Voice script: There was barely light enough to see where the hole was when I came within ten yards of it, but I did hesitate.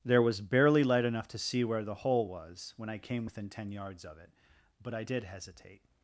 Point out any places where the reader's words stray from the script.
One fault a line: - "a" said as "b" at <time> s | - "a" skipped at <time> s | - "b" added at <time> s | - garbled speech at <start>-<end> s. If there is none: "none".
none